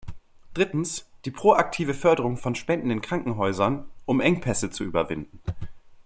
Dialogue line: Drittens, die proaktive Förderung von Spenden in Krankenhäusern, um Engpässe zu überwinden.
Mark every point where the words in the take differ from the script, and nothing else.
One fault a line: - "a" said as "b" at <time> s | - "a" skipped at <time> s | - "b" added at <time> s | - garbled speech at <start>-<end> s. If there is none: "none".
none